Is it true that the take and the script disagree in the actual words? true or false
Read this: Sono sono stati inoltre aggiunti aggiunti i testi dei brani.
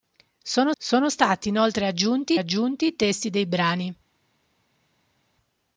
false